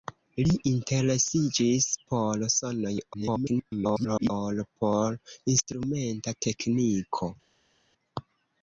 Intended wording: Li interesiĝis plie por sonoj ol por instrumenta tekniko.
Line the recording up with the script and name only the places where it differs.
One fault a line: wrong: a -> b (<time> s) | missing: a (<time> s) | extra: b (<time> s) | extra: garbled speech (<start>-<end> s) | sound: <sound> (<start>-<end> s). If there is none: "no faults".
missing: plie (1.9 s)
extra: garbled speech (3.1-4.3 s)